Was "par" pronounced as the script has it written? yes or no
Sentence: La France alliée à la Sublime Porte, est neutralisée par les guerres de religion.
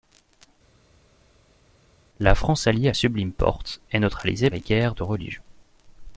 no